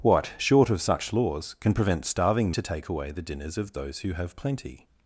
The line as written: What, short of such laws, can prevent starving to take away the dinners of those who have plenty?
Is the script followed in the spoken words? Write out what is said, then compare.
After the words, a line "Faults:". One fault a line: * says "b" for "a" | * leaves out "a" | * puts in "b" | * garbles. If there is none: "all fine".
What, short of such laws, can prevent starving to take away the dinners of those who have plenty?
Faults:
all fine